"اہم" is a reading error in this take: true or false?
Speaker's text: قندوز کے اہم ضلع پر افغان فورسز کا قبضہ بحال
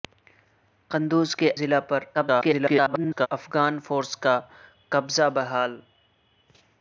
true